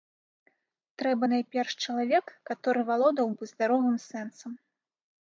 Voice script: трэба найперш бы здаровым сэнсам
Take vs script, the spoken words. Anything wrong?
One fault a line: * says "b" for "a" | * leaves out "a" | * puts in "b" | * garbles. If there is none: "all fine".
* puts in "чалавек каторы валодаў"